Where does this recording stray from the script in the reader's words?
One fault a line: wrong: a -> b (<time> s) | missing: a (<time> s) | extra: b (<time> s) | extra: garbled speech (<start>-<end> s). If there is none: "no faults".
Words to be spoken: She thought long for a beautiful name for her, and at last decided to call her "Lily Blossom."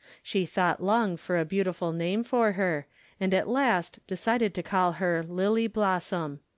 no faults